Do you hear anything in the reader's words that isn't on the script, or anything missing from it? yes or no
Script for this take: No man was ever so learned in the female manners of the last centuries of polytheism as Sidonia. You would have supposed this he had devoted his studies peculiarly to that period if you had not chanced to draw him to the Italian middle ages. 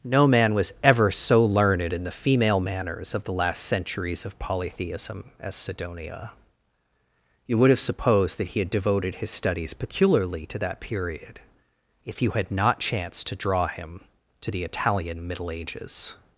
yes